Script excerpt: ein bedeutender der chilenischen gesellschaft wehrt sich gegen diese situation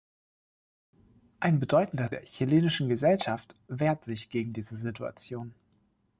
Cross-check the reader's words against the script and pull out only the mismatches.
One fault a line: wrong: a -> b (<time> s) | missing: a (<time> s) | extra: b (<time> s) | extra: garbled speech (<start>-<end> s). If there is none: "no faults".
no faults